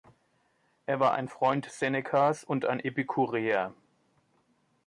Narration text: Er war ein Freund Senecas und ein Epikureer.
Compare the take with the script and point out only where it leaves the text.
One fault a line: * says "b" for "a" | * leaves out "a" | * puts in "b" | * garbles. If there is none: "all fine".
all fine